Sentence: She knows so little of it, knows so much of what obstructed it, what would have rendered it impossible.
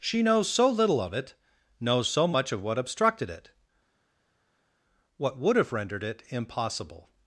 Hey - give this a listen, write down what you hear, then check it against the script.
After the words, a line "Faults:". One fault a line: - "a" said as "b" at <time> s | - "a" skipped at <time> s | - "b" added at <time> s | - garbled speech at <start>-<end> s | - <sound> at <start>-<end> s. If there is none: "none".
She knows so little of it, knows so much of what obstructed it, what would have rendered it impossible.
Faults:
none